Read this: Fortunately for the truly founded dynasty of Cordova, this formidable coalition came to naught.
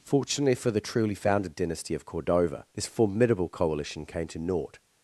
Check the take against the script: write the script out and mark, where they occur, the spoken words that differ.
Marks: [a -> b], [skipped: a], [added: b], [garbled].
Fortunately for the truly founded dynasty of Cordova, this formidable coalition came to naught.